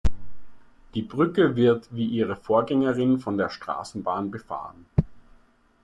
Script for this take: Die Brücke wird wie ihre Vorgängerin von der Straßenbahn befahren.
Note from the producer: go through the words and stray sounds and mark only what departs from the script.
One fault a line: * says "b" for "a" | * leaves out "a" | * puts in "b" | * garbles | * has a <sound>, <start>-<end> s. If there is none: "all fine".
all fine